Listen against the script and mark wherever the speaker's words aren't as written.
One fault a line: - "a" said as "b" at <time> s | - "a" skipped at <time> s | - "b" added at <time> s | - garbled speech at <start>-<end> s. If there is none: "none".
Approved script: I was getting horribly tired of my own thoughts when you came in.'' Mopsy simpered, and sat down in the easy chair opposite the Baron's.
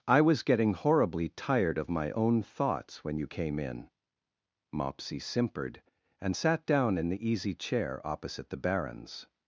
none